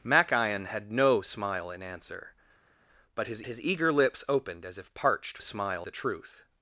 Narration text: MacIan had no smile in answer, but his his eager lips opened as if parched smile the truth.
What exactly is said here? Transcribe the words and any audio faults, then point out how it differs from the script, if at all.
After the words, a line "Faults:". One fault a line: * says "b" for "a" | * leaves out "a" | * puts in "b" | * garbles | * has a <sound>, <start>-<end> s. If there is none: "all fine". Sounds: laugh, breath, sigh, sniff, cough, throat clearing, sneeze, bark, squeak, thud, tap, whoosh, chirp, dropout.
MacIan had no smile in answer, but his his eager lips opened as if parched smile the truth.
Faults:
all fine